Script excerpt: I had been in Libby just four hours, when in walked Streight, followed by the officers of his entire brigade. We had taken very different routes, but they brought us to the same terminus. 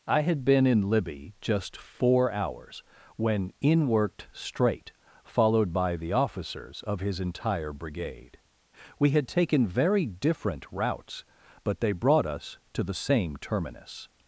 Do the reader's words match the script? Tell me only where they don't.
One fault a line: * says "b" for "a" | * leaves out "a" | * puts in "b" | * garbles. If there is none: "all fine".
* says "worked" for "walked"